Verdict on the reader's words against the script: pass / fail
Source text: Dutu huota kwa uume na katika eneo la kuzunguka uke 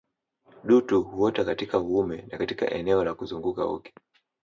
fail